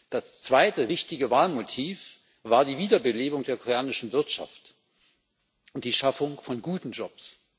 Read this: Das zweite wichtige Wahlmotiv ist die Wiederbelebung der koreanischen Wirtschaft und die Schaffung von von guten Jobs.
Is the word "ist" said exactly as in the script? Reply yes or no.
no